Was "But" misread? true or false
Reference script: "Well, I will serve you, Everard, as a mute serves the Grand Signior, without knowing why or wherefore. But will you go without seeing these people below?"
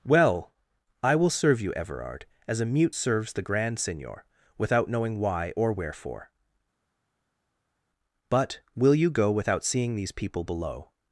false